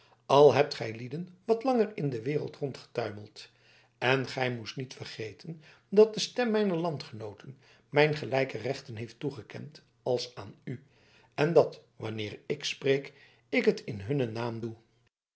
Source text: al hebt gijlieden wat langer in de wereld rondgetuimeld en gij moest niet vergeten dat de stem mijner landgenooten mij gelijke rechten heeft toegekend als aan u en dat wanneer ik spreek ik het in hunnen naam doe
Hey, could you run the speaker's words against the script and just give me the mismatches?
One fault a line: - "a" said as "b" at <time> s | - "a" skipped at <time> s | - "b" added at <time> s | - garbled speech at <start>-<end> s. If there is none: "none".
none